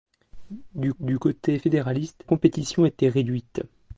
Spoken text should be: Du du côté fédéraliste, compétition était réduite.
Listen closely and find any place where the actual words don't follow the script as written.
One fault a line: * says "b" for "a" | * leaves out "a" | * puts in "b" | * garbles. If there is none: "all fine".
all fine